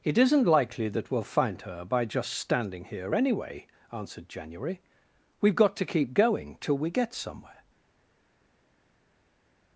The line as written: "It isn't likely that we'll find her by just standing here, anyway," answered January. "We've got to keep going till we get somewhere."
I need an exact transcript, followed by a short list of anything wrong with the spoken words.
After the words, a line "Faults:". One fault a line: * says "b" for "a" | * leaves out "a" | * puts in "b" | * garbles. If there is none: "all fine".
"It isn't likely that we'll find her by just standing here, anyway," answered January. "We've got to keep going till we get somewhere."
Faults:
all fine